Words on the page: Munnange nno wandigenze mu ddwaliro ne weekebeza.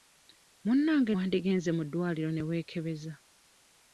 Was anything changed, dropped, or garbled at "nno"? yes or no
yes